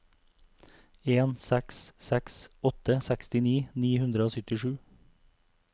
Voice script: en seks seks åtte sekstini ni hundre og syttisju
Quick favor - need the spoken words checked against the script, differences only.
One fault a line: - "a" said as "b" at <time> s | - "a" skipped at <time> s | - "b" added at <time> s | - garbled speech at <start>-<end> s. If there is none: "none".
none